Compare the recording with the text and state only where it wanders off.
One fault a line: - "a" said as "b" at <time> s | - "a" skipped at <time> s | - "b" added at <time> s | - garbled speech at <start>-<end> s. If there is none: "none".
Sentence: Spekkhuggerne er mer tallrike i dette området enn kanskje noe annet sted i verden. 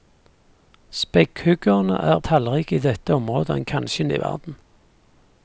- "mer" skipped at 2.2 s
- "noe annet sted" skipped at 4.1 s